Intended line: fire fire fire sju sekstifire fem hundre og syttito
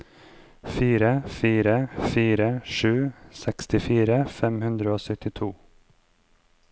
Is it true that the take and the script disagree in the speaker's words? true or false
false